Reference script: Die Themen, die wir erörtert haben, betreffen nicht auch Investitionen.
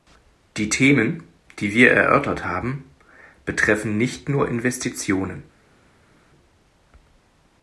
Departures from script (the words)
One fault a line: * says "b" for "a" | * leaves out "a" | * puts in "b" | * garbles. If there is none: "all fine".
* says "nur" for "auch"